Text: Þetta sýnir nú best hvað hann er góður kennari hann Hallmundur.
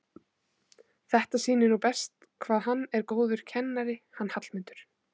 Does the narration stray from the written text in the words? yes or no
no